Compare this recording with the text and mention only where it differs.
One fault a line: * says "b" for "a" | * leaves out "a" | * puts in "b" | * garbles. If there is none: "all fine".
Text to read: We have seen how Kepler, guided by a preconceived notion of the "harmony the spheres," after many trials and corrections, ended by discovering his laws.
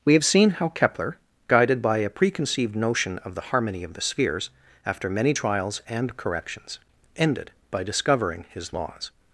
* puts in "of"